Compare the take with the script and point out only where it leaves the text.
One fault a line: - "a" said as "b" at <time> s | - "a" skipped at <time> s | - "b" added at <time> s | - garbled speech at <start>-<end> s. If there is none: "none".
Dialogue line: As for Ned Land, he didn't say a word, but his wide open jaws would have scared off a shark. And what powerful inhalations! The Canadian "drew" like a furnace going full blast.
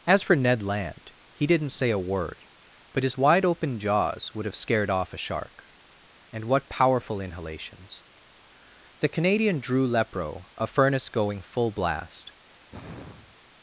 - "like" said as "lepro" at 9.9 s